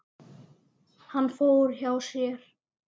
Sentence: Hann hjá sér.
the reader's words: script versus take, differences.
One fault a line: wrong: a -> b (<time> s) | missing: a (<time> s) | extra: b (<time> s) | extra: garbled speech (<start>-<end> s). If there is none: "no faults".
extra: fór (1.4 s)